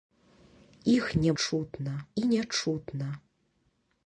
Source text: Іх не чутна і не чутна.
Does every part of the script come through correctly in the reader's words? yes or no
yes